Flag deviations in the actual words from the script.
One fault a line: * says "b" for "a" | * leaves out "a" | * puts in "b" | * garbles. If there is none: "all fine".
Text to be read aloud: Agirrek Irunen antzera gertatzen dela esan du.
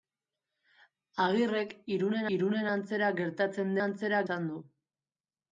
* puts in "Irunen"
* says "antzera" for "dela"